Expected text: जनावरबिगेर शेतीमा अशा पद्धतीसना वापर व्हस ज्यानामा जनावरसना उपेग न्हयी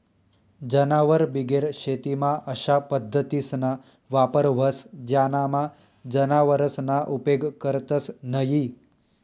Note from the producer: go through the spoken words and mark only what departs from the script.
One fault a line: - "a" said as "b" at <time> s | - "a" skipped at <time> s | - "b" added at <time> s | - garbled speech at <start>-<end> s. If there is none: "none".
- "करतंस" added at 7.6 s